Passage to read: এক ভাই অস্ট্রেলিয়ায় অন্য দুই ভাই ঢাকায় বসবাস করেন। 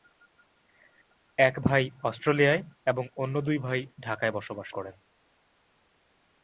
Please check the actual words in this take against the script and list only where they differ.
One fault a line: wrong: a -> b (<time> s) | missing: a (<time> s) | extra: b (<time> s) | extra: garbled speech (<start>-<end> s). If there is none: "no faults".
extra: এবং (2.9 s)